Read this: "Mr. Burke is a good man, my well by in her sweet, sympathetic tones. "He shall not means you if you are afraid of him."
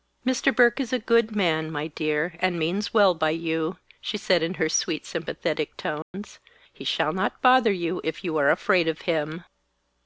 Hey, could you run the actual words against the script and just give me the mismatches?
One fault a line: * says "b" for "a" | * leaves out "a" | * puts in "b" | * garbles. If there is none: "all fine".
* puts in "dear and means"
* puts in "you she said"
* says "bother" for "means"